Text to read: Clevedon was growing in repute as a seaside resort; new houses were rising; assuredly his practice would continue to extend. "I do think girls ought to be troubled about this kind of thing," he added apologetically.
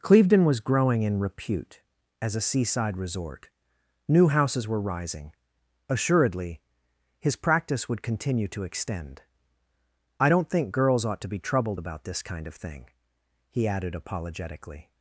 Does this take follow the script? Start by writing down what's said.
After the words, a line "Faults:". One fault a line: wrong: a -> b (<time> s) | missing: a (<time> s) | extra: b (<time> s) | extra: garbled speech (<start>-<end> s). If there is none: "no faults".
Clevedon was growing in repute as a seaside resort; new houses were rising; assuredly his practice would continue to extend. "I don't think girls ought to be troubled about this kind of thing," he added apologetically.
Faults:
wrong: do -> don't (10.3 s)